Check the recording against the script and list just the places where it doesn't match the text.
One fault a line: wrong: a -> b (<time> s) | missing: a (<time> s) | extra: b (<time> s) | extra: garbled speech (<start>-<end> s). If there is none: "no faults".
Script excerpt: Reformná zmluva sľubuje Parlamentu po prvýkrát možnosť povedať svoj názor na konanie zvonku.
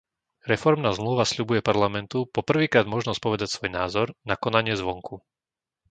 no faults